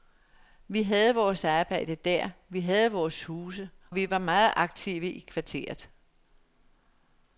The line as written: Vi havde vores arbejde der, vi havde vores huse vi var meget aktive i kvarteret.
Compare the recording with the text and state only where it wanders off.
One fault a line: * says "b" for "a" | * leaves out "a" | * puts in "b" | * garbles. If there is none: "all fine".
all fine